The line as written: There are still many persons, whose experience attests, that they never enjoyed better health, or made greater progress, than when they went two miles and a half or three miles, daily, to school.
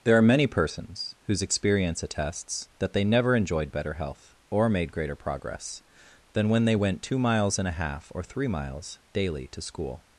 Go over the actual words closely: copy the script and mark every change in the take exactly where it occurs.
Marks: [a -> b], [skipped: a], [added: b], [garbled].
There are [skipped: still] many persons, whose experience attests, that they never enjoyed better health, or made greater progress, than when they went two miles and a half or three miles, daily, to school.